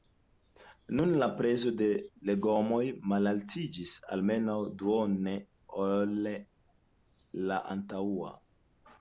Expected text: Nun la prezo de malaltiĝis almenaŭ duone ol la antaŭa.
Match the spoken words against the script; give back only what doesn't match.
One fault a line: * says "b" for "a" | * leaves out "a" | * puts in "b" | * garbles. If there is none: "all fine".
* puts in "legomoj"